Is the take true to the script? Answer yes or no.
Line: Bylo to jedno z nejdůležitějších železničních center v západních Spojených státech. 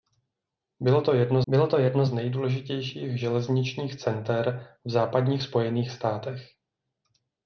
no